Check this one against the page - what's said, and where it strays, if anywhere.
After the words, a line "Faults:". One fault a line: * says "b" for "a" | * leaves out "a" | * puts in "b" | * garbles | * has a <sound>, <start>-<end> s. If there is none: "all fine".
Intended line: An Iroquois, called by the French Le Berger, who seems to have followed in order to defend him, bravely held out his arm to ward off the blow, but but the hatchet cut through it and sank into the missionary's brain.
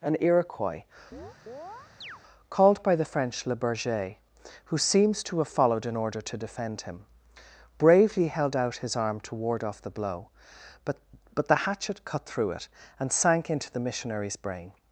An Iroquois, called by the French Le Berger, who seems to have followed in order to defend him, bravely held out his arm to ward off the blow, but but the hatchet cut through it and sank into the missionary's brain.
Faults:
* has a chirp, 1.1-2.2 s